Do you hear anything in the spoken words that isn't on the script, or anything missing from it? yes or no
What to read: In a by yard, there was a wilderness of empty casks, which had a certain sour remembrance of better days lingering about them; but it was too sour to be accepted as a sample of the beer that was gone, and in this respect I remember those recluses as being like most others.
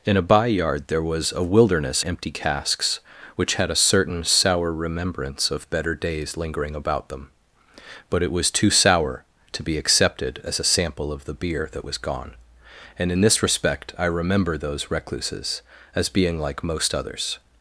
yes